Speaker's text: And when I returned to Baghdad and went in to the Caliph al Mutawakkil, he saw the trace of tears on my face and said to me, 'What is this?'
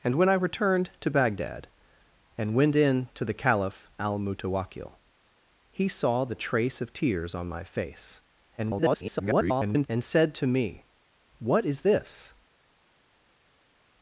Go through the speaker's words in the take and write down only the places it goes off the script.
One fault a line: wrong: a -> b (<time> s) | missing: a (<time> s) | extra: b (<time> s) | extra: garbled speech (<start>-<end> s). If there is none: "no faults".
extra: garbled speech (8.6-9.9 s)